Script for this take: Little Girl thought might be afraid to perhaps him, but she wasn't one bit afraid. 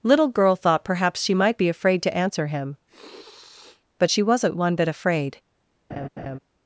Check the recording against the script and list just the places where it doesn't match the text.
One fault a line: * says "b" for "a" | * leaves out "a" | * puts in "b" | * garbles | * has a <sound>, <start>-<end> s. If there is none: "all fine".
* puts in "perhaps she"
* says "answer" for "perhaps"
* has a sniff, 2.9-3.8 s
* has a laugh, 5.9-6.4 s